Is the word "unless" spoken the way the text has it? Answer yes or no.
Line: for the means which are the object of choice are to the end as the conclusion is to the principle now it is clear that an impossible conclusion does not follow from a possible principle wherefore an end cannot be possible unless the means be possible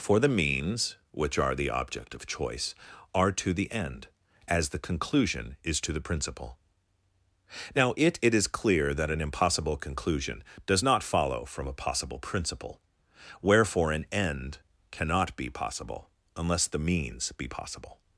yes